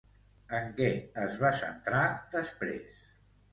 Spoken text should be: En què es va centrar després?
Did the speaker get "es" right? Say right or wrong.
right